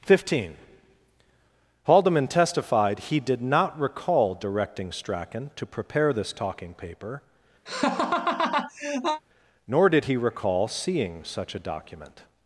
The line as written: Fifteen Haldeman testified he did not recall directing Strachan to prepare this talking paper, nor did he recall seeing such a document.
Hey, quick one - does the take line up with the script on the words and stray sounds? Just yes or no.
no